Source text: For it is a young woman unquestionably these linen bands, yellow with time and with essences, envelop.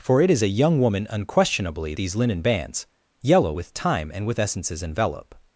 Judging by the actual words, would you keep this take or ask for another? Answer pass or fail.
pass